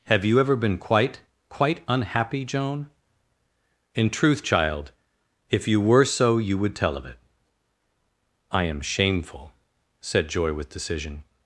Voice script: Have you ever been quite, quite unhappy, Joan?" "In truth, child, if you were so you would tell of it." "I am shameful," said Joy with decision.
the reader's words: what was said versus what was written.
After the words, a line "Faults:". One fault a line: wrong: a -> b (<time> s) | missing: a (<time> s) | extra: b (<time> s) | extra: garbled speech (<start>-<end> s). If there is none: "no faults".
Have you ever been quite, quite unhappy, Joan?" "In truth, child, if you were so you would tell of it." "I am shameful," said Joy with decision.
Faults:
no faults